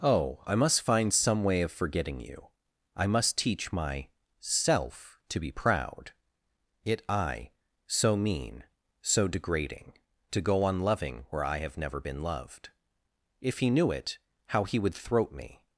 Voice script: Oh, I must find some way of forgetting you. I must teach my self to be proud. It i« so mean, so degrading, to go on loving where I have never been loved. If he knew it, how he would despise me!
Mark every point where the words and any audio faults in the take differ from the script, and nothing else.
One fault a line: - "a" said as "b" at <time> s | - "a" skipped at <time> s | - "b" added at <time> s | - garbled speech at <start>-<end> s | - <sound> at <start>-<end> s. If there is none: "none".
- "despise" said as "throat" at 14.9 s